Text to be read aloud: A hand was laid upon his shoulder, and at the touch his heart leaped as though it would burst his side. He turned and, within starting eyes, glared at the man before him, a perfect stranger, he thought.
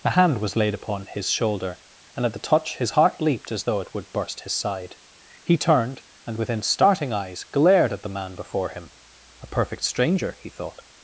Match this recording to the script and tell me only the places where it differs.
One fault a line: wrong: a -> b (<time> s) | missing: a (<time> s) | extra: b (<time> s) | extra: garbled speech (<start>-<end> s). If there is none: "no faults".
no faults